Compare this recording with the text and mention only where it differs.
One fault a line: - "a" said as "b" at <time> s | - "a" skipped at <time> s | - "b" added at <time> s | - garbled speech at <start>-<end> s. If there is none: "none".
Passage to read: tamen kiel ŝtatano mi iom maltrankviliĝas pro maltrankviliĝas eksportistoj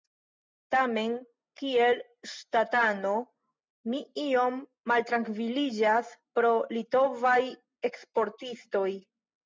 - "maltrankviliĝas" said as "litovaj" at 6.8 s